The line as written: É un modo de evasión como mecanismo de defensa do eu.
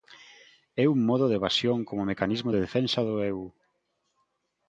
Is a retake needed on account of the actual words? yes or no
no